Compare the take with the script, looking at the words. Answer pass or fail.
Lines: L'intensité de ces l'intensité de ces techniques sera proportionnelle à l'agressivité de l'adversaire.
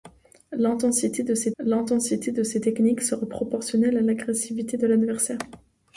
pass